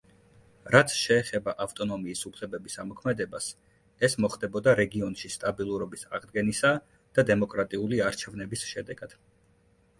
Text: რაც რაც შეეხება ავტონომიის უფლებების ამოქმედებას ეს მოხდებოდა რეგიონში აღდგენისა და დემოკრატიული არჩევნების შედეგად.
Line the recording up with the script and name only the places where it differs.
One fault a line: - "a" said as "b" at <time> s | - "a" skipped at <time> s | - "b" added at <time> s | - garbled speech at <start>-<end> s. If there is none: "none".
- "რაც" skipped at 0.9 s
- "სტაბილურობის" added at 5.4 s